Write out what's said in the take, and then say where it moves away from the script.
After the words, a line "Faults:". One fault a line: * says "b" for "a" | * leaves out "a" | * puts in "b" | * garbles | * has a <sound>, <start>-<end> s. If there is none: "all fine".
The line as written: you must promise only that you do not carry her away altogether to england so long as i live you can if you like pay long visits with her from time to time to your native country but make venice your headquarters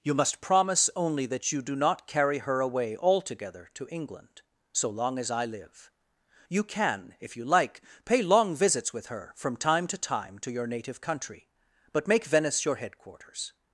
you must promise only that you do not carry her away altogether to england so long as i live you can if you like pay long visits with her from time to time to your native country but make venice your headquarters
Faults:
all fine